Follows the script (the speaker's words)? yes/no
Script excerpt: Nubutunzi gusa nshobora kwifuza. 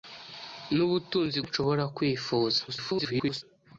no